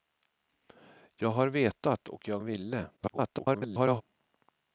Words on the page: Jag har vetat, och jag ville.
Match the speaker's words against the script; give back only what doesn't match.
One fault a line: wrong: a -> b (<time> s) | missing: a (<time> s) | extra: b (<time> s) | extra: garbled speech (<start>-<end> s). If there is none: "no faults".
extra: garbled speech (3.0-4.0 s)